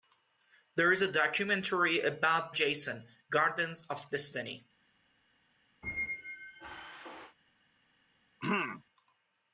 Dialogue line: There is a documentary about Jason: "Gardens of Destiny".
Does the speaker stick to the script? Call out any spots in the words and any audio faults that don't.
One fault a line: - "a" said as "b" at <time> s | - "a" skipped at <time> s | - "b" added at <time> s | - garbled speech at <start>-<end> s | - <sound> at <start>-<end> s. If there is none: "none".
- squeak at 5.8-7.4 s
- throat clearing at 8.4-8.8 s